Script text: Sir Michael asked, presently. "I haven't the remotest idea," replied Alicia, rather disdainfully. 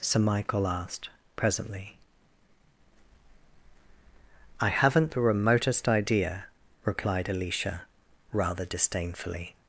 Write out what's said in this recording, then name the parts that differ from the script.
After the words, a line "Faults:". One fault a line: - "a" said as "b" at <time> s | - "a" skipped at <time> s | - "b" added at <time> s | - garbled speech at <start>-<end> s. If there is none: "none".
Sir Michael asked, presently. "I haven't the remotest idea," replied Alicia, rather disdainfully.
Faults:
none